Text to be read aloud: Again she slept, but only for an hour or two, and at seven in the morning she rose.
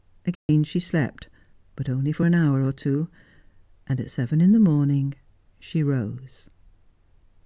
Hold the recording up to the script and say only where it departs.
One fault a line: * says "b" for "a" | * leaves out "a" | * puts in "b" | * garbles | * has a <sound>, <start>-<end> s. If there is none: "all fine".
* has a dropout, 0.3-0.5 s